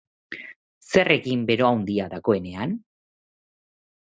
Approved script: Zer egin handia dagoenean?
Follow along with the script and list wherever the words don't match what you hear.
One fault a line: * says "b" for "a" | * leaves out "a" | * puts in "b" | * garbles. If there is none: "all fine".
* puts in "bero"